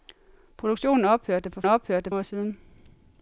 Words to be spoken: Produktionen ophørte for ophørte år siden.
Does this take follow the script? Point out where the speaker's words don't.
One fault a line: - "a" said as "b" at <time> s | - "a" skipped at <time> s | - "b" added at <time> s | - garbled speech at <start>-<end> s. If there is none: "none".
none